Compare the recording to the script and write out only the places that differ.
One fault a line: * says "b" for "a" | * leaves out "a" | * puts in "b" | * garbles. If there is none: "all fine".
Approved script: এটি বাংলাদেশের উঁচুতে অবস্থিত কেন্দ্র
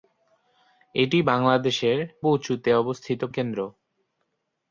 all fine